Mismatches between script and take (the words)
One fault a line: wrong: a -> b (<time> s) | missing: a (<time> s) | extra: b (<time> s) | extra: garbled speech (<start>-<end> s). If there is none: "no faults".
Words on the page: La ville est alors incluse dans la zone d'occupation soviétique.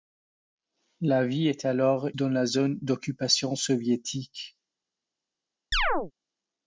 missing: incluse (2.1 s)